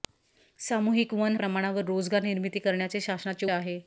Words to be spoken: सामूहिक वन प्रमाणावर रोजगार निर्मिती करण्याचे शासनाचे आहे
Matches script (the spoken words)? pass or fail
pass